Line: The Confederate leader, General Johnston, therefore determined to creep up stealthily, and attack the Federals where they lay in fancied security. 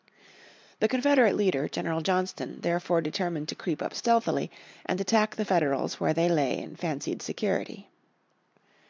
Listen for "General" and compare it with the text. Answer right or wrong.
right